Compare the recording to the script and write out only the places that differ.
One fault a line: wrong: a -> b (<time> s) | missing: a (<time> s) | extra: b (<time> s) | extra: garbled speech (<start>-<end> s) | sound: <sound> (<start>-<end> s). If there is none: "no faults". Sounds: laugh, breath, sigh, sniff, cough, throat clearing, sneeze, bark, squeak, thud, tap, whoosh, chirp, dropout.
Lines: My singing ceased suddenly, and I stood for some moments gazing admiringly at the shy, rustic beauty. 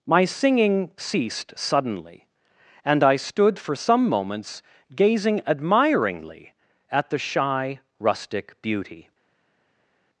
no faults